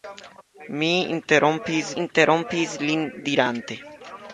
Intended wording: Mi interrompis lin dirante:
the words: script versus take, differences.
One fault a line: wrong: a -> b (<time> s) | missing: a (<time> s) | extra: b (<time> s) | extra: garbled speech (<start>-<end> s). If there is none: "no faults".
extra: interrompis (2.0 s)